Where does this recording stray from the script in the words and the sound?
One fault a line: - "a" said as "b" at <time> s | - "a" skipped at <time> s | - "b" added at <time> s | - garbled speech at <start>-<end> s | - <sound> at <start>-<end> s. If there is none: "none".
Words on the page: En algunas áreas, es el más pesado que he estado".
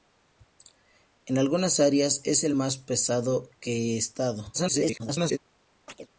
- garbled speech at 4.5-5.4 s
- chirp at 5.9-6.1 s